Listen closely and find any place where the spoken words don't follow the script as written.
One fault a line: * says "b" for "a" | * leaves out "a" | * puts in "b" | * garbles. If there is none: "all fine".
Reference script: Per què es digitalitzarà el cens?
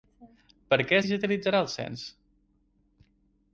all fine